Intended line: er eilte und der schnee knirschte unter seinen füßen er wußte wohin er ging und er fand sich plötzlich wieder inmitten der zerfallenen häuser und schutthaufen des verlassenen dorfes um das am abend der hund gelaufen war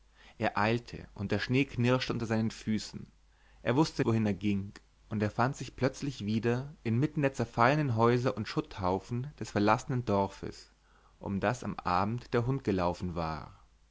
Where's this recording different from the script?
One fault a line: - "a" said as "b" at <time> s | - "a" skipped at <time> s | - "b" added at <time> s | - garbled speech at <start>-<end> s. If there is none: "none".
none